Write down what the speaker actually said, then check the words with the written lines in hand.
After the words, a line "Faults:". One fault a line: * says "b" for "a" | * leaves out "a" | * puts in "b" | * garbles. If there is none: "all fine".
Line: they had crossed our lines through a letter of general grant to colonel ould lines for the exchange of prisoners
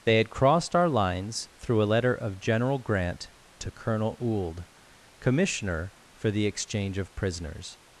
they had crossed our lines through a letter of general grant to colonel ould commissioner for the exchange of prisoners
Faults:
* says "commissioner" for "lines"